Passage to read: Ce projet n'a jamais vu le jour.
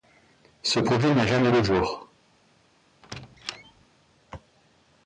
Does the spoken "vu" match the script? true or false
false